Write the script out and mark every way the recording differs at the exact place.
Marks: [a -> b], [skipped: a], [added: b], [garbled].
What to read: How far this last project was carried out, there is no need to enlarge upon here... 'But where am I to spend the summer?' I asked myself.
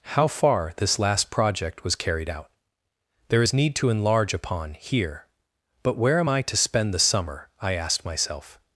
How far this last project was carried out, there is [skipped: no] need to enlarge upon here... 'But where am I to spend the summer?' I asked myself.